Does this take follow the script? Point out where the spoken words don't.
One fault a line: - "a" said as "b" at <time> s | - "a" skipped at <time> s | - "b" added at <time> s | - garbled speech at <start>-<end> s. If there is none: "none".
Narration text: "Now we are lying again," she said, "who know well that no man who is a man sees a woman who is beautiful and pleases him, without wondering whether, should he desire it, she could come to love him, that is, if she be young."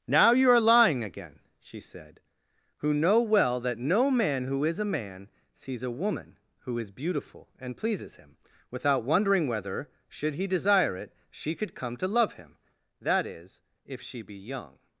- "we" said as "you" at 0.3 s